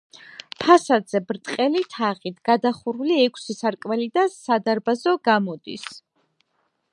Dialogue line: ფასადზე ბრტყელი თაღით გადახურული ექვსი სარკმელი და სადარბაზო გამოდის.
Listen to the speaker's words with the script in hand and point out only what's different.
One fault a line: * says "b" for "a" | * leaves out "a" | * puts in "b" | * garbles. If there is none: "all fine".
all fine